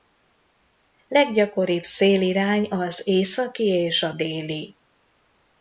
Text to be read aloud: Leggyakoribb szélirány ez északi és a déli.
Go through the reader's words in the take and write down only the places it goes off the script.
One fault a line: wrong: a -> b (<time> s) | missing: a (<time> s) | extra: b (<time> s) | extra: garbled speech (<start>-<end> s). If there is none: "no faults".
wrong: ez -> az (2.7 s)